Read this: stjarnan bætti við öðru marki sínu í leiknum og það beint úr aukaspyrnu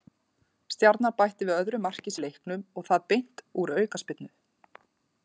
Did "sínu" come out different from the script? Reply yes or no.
yes